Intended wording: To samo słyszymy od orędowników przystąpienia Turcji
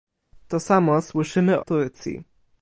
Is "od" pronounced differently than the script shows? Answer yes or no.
yes